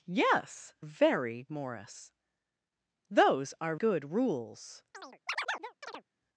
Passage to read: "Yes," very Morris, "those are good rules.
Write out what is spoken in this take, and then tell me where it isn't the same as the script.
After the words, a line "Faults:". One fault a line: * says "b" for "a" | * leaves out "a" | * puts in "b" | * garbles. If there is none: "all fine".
"Yes," very Morris, "those are good rules.
Faults:
all fine